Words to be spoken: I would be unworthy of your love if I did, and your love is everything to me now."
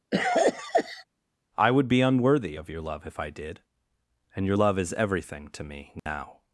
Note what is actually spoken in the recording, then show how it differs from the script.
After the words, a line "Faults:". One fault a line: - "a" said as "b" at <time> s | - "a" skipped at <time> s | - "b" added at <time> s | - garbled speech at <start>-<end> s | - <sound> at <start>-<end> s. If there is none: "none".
I would be unworthy of your love if I did, and your love is everything to me now."
Faults:
- cough at 0.1-1.0 s
- dropout at 6.0-6.1 s